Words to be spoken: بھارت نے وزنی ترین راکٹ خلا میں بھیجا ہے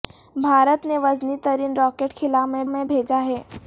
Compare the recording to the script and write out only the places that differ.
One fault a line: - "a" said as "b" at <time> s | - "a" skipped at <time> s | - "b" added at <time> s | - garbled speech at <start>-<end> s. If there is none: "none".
- "میں" added at 2.7 s